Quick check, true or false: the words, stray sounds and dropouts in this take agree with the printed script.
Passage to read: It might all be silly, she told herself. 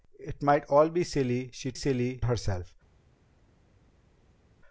false